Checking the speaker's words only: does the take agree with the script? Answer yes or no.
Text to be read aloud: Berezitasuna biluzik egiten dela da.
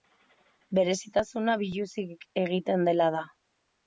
yes